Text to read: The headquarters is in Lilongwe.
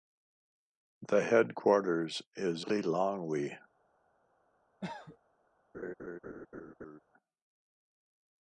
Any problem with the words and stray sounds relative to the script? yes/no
yes